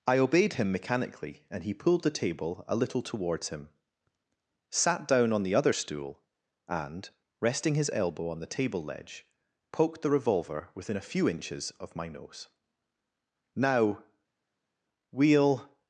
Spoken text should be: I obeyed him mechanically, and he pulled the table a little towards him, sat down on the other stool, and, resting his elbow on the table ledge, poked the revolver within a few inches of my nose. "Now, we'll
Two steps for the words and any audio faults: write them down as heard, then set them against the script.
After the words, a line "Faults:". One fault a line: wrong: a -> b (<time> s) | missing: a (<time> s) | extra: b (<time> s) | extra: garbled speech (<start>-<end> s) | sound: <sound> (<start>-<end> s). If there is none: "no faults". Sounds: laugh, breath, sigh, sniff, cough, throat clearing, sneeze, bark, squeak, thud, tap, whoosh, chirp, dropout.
I obeyed him mechanically, and he pulled the table a little towards him, sat down on the other stool, and, resting his elbow on the table ledge, poked the revolver within a few inches of my nose. "Now, we'll
Faults:
no faults